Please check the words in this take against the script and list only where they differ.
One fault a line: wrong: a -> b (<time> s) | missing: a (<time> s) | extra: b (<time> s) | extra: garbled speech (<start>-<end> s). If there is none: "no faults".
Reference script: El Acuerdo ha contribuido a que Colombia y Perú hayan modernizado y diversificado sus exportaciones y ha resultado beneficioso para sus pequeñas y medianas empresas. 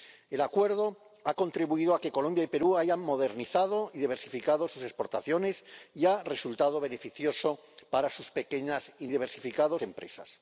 wrong: medianas -> diversificado (9.1 s)